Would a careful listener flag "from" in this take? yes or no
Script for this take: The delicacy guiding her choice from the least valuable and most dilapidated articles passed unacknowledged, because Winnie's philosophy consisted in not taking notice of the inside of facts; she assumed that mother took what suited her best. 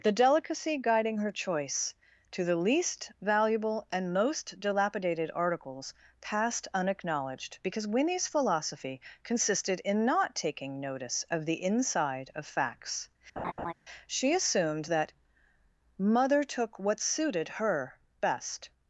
yes